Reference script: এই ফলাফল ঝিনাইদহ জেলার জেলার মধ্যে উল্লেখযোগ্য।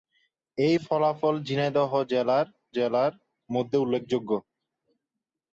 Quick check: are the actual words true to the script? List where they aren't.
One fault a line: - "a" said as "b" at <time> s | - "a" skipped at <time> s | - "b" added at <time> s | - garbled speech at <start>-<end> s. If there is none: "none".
none